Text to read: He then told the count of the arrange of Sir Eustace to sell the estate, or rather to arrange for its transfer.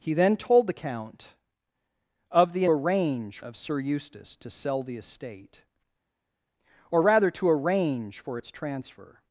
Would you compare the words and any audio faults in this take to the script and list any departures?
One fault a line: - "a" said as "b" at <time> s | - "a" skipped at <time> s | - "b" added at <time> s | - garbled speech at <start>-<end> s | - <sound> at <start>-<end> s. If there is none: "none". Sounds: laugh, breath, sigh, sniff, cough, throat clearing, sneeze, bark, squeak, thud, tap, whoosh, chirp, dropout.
none